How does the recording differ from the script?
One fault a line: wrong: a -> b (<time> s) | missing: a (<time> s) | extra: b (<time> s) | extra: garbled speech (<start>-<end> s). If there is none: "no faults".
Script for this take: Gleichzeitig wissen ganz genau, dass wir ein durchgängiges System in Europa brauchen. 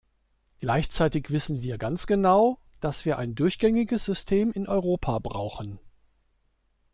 extra: wir (1.6 s)